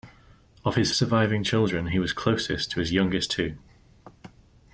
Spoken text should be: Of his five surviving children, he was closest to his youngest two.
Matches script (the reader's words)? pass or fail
fail